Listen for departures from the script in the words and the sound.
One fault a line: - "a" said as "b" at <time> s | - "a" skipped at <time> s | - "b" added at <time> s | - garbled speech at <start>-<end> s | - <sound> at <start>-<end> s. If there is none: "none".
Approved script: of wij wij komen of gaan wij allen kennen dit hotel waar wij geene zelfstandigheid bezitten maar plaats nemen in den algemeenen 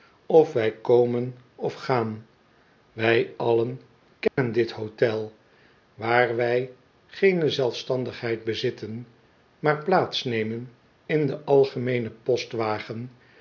- "wij" skipped at 0.7 s
- dropout at 4.3-4.4 s